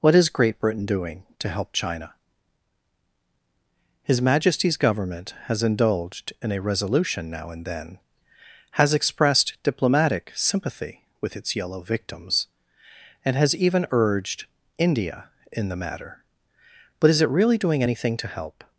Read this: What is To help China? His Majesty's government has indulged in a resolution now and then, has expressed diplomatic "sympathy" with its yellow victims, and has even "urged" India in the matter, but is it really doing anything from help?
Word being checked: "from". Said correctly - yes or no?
no